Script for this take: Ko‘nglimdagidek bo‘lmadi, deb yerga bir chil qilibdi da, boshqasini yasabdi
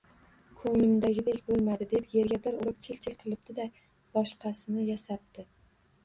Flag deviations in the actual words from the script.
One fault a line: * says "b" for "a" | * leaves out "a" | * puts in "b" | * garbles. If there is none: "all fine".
* puts in "urib chil"